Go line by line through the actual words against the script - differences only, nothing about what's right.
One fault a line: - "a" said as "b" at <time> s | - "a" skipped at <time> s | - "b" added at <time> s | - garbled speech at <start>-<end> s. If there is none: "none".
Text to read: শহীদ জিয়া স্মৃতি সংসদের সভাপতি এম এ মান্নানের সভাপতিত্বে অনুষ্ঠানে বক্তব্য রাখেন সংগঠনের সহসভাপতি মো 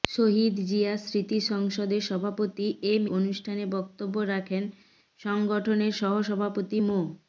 - "এ মান্নানের সভাপতিত্বে" skipped at 3.0 s